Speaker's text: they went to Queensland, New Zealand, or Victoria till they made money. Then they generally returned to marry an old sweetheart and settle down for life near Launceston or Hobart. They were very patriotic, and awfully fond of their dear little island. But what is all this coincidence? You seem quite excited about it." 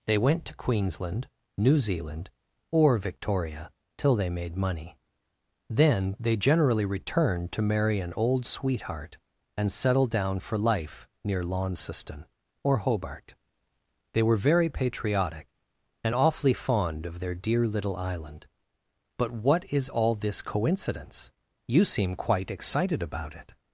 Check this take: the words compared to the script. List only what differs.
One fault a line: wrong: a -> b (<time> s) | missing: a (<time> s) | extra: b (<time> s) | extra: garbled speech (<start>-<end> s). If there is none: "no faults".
no faults